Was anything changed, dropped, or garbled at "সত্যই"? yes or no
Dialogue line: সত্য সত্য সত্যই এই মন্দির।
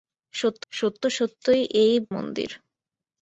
no